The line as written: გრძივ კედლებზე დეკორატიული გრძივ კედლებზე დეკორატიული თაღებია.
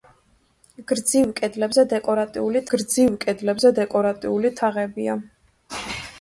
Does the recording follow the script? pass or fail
pass